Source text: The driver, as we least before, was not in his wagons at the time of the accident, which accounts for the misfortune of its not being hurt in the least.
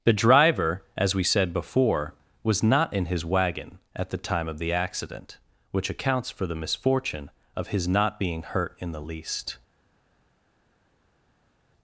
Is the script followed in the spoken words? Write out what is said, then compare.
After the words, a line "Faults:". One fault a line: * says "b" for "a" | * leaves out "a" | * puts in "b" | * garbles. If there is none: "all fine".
The driver, as we said before, was not in his wagon at the time of the accident, which accounts for the misfortune of his not being hurt in the least.
Faults:
* says "said" for "least"
* says "wagon" for "wagons"
* says "his" for "its"